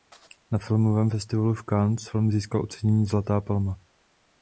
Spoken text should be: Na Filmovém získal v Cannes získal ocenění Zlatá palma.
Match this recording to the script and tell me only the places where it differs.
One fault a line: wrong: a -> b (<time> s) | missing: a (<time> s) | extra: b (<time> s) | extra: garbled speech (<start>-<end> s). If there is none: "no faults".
wrong: získal -> festivalu (1.1 s)
extra: film (2.0 s)